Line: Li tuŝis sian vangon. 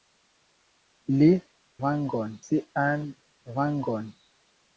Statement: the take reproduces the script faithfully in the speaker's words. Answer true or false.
false